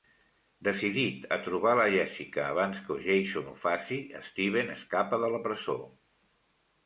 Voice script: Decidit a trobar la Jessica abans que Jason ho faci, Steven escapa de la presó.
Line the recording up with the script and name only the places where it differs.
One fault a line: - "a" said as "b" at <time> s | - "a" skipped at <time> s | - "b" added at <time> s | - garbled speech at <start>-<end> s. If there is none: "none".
none